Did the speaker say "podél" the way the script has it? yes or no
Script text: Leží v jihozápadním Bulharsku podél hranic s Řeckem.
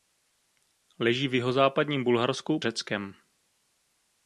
no